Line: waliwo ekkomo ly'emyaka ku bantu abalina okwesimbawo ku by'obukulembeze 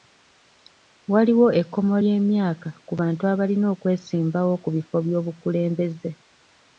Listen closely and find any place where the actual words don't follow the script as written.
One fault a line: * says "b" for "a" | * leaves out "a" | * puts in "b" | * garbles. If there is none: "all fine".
* puts in "bifo"